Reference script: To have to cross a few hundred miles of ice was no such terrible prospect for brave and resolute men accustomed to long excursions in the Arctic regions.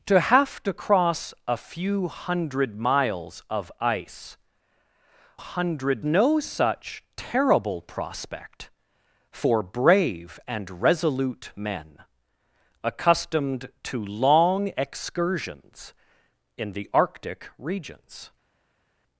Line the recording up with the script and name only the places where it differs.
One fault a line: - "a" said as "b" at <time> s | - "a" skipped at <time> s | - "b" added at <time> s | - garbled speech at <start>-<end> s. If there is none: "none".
- "was" said as "hundred" at 5.4 s